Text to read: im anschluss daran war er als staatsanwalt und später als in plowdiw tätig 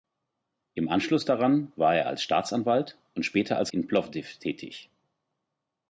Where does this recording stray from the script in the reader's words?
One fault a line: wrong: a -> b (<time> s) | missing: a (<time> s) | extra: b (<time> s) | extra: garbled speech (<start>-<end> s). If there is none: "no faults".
no faults